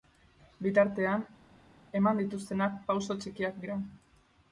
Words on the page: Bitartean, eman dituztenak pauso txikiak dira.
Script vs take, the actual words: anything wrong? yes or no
no